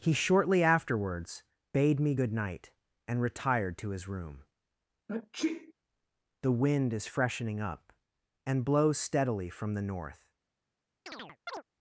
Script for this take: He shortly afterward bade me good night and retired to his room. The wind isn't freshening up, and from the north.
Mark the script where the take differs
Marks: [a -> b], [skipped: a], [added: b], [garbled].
He shortly [afterward -> afterwards] bade me good night and retired to his room. The wind [isn't -> is] freshening up, and [added: blows steadily] from the north.